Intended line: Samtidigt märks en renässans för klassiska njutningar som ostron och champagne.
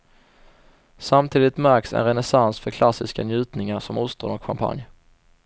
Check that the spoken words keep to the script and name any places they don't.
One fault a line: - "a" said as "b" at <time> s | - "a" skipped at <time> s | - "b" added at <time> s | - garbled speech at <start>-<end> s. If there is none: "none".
none